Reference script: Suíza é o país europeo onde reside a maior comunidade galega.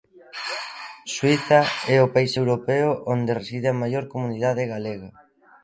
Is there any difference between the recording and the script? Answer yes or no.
no